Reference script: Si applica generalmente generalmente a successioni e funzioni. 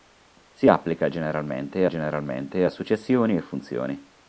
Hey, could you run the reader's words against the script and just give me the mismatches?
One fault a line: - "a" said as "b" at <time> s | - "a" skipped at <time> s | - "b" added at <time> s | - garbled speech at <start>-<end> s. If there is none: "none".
none